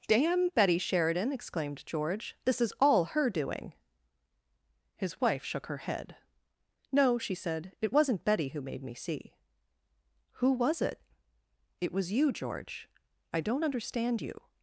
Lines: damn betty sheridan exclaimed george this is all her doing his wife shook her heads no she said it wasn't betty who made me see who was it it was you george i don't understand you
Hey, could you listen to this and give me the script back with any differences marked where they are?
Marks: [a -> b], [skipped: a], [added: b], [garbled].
damn betty sheridan exclaimed george this is all her doing his wife shook her [heads -> head] no she said it wasn't betty who made me see who was it it was you george i don't understand you